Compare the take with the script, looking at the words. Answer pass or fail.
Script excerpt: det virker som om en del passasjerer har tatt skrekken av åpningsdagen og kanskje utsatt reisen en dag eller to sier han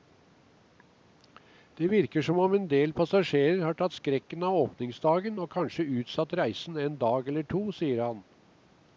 pass